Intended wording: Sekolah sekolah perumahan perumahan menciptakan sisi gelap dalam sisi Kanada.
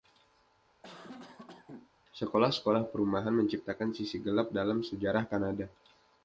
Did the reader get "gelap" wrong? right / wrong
right